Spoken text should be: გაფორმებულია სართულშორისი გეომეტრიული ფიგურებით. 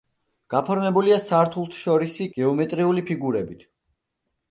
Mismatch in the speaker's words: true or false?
false